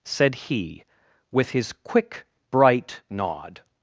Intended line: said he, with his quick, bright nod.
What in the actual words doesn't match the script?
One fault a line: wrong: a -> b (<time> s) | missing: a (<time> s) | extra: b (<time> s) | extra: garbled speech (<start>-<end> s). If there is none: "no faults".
no faults